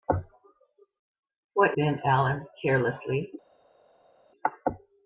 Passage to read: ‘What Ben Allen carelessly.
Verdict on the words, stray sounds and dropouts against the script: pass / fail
pass